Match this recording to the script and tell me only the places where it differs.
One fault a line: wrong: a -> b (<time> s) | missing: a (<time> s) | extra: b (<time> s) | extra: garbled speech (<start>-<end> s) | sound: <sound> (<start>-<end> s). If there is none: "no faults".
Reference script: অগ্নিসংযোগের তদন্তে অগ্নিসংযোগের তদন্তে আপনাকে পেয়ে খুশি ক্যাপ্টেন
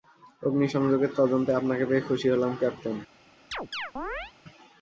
missing: অগ্নিসংযোগের তদন্তে (1.5 s)
extra: হলাম (2.3 s)
sound: chirp (3.5-4.3 s)